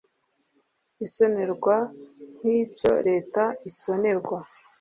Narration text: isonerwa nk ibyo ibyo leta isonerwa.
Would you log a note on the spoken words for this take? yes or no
yes